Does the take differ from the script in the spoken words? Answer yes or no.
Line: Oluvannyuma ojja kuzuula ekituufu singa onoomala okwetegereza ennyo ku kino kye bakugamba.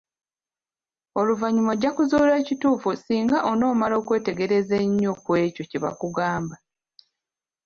yes